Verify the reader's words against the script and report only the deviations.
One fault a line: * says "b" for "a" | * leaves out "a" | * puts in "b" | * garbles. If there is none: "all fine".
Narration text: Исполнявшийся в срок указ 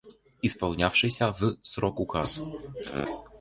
all fine